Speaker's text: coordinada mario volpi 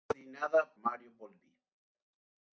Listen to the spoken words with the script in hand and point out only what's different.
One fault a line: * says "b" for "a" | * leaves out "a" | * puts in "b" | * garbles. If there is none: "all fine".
all fine